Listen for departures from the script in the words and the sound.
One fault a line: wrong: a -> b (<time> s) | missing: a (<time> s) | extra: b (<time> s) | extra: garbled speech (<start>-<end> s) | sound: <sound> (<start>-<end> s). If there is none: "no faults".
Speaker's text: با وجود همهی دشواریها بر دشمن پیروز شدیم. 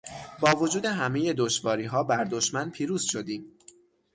no faults